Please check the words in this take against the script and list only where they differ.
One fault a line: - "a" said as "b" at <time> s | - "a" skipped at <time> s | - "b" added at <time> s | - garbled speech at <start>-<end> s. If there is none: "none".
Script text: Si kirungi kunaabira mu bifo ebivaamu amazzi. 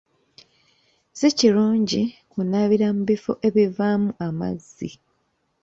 none